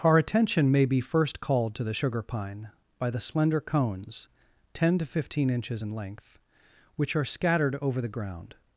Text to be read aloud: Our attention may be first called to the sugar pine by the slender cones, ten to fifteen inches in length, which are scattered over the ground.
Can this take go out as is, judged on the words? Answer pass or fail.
pass